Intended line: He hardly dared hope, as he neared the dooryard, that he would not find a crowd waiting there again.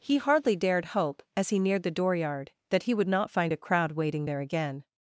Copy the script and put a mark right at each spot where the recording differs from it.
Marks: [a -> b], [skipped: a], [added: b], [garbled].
He hardly dared hope, as he neared the dooryard, that he would not find a crowd waiting there again.